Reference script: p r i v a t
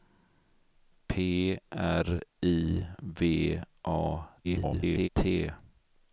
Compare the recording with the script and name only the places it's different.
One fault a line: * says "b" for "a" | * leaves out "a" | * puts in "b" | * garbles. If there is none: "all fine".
* garbles